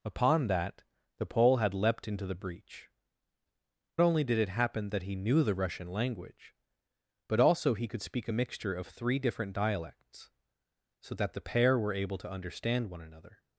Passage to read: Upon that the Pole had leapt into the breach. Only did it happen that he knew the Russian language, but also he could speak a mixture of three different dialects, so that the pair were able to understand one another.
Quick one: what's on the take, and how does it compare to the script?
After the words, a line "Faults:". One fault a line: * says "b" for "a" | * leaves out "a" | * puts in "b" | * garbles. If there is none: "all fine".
Upon that the Pole had leapt into the breach. Only did it happen that he knew the Russian language, but also he could speak a mixture of three different dialects, so that the pair were able to understand one another.
Faults:
all fine